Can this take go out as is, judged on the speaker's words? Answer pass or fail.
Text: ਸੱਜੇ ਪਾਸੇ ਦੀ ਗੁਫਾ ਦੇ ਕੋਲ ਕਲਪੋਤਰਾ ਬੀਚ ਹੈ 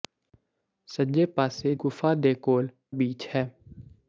fail